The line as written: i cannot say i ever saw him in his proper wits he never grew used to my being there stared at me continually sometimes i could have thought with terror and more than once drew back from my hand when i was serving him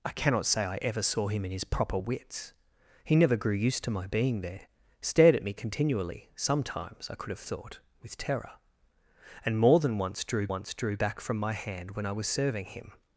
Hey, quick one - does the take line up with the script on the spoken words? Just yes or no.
no